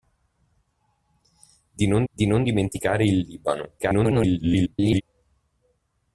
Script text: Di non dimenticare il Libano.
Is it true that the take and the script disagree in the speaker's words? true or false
true